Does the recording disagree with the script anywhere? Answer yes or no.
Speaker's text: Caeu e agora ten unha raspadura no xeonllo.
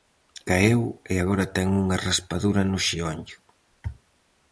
no